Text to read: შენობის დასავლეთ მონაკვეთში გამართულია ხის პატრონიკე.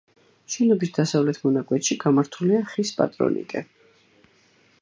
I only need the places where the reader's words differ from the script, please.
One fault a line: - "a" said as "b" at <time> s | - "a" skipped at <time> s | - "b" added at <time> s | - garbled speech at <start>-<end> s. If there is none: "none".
none